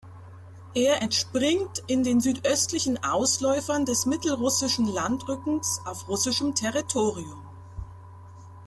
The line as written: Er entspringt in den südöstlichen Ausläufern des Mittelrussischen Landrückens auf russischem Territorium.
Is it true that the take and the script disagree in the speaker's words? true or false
false